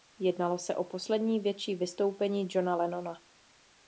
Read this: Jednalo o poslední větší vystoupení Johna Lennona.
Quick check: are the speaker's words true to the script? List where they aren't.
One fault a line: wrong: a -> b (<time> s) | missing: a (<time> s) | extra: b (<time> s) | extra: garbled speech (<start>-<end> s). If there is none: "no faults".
extra: se (0.6 s)